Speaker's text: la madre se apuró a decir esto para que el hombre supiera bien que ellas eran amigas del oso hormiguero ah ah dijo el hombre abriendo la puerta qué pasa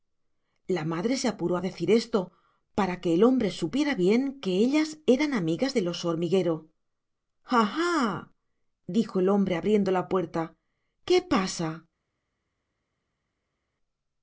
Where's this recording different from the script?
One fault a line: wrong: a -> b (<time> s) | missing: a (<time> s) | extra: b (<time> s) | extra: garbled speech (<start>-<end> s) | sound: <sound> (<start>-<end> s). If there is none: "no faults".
no faults